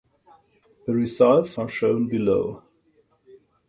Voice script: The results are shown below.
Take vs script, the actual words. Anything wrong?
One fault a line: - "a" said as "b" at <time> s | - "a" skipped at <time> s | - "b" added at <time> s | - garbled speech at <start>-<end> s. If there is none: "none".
none